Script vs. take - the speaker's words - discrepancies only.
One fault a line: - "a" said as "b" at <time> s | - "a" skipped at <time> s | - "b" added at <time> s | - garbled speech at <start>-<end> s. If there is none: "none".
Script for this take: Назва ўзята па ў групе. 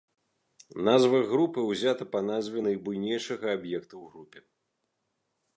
- "групы" added at 1.3 s
- "назве найбуйнейшага аб'екта" added at 2.3 s